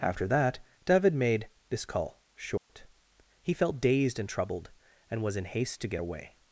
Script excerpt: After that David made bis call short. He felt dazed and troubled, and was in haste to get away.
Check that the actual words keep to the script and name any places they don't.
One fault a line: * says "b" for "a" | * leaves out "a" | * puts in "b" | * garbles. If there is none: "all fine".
* says "this" for "bis"